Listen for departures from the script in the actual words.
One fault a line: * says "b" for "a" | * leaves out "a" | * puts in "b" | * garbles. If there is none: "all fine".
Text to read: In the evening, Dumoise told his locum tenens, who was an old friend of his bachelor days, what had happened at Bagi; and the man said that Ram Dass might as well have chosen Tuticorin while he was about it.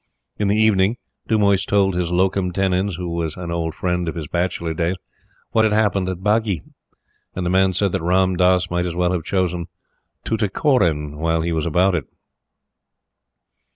all fine